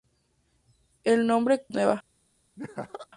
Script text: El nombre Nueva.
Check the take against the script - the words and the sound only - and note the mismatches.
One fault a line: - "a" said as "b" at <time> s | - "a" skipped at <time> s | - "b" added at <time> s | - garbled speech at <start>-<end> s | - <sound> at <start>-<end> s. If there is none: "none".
- laugh at 2.6-3.1 s